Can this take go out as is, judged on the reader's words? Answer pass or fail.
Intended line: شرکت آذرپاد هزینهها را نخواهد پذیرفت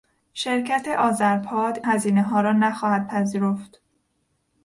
pass